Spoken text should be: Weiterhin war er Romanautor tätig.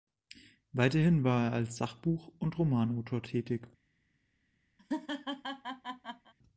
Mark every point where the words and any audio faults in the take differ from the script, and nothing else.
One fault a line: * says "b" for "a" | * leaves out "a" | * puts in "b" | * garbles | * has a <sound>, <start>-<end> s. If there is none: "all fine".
* puts in "als Sachbuch und"
* has a laugh, 4.8-6.3 s